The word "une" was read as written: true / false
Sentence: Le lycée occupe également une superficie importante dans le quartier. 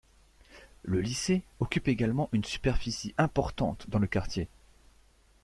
true